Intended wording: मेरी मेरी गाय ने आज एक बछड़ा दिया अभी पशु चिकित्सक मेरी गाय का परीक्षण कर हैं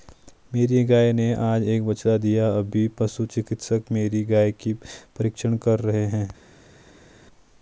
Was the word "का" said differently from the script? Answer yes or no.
yes